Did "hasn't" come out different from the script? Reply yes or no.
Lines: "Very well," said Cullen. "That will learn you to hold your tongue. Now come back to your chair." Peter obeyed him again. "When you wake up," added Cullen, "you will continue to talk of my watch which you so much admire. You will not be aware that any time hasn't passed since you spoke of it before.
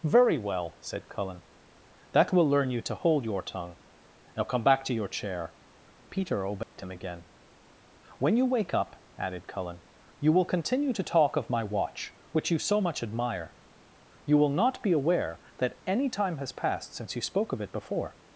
yes